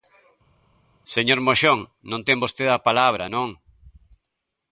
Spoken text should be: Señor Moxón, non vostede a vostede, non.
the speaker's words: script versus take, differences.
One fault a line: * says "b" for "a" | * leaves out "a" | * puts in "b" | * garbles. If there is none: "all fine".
* puts in "ten"
* says "palabra" for "vostede"